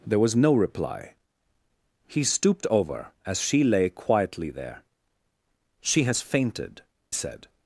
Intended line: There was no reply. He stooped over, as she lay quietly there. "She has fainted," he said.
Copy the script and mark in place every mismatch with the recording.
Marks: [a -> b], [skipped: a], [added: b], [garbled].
There was no reply. He stooped over, as she lay quietly there. "She has fainted," [skipped: he] said.